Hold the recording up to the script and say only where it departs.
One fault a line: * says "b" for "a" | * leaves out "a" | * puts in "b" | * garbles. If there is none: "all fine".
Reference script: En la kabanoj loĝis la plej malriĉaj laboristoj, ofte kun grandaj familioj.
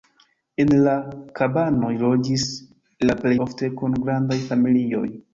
* leaves out "malriĉaj laboristoj"